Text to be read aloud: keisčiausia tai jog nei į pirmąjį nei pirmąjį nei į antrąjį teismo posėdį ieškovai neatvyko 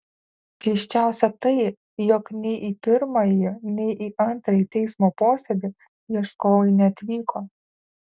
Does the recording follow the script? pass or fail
fail